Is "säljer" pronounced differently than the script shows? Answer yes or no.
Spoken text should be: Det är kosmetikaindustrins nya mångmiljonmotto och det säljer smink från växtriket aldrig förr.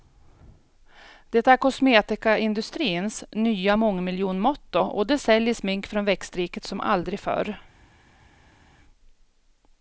no